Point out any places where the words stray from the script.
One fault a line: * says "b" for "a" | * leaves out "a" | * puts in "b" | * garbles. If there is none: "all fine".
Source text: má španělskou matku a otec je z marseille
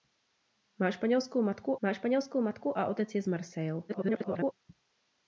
* puts in "má španělskou matku"
* garbles